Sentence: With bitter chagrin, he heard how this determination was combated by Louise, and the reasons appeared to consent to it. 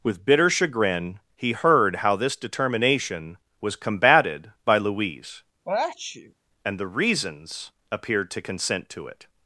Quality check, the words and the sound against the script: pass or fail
fail